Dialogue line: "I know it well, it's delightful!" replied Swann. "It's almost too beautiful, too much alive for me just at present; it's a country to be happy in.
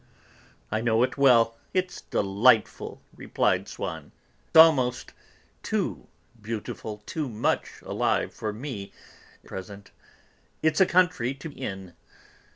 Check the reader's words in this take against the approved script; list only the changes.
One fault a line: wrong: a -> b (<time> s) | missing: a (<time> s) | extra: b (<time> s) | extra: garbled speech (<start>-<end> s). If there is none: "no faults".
missing: It's (4.1 s)
missing: just at (8.9 s)
missing: be happy (11.5 s)